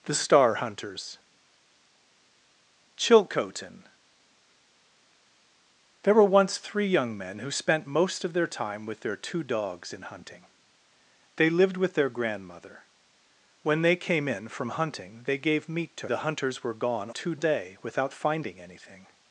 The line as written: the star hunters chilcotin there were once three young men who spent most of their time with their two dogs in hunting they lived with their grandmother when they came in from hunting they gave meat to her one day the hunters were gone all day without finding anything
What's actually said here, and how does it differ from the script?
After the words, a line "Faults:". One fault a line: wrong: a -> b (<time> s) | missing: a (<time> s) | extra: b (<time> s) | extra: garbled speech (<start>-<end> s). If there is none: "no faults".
the star hunters chilcotin there were once three young men who spent most of their time with their two dogs in hunting they lived with their grandmother when they came in from hunting they gave meat to the hunters were gone two day without finding anything
Faults:
missing: her one day (16.1 s)
wrong: all -> two (17.1 s)